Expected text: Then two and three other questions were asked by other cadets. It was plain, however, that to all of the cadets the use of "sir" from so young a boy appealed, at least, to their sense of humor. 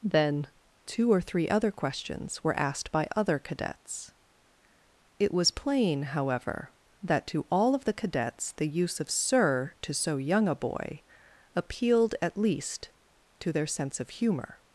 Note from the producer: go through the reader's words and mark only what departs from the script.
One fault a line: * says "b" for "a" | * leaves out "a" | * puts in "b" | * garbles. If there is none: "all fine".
* says "or" for "and"
* says "to" for "from"